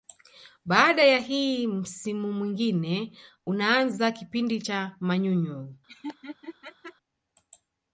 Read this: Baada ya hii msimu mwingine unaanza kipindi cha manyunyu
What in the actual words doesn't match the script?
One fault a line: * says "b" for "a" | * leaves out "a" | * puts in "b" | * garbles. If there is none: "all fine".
all fine